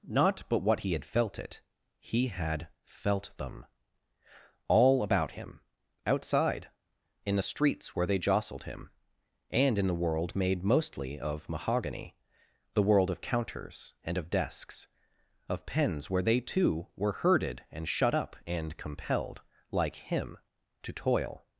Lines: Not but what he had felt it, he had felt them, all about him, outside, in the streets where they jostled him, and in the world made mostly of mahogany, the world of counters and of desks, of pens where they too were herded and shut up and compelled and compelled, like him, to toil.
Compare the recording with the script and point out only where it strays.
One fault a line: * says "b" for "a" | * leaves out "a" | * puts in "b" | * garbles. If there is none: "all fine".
* leaves out "and compelled"